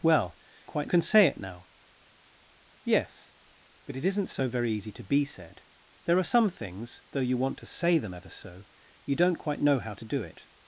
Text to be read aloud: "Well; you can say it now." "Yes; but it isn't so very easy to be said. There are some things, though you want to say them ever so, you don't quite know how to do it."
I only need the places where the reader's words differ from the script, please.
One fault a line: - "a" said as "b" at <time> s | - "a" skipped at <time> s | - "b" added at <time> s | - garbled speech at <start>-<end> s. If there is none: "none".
- "you" said as "quite" at 0.7 s